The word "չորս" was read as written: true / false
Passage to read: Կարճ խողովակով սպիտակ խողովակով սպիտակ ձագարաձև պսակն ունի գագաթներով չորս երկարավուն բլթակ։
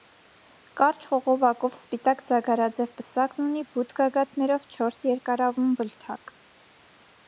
true